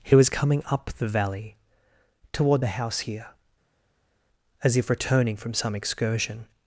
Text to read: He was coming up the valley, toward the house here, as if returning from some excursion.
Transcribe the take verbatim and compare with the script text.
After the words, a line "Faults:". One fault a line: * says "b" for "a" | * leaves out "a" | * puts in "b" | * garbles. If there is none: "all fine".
He was coming up the valley, toward the house here, as if returning from some excursion.
Faults:
all fine